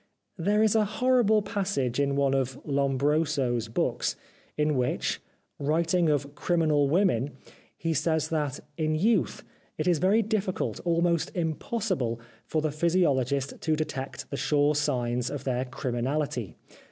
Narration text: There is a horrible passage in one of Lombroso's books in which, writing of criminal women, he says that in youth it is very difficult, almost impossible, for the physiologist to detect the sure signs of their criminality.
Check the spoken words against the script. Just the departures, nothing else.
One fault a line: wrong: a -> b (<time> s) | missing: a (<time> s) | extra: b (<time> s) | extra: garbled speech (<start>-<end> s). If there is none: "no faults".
no faults